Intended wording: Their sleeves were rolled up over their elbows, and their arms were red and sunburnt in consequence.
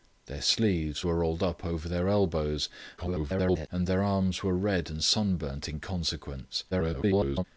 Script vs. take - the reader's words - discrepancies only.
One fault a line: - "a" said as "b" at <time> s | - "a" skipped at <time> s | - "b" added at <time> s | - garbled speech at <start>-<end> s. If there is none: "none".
- garbled speech at 3.0-3.7 s
- garbled speech at 6.7-7.4 s